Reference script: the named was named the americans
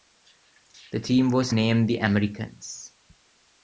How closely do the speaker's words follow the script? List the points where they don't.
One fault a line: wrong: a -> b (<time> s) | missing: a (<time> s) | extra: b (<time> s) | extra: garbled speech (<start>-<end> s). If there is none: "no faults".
wrong: named -> team (1.0 s)